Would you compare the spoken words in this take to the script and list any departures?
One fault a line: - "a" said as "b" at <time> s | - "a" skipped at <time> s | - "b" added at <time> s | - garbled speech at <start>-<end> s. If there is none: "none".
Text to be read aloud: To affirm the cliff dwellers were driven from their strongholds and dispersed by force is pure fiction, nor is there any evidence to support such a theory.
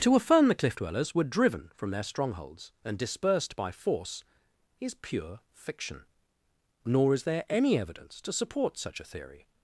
none